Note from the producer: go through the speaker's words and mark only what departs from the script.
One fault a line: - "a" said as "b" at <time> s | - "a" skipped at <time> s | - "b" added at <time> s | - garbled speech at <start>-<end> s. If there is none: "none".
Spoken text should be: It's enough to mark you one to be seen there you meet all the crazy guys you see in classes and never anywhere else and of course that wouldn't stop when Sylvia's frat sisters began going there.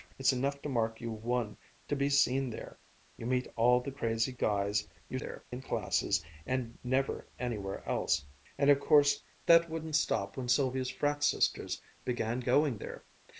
- "see" said as "there" at 5.2 s